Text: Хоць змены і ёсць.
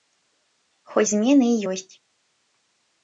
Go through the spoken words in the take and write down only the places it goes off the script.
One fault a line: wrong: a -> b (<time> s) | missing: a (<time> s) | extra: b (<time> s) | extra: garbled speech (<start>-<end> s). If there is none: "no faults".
no faults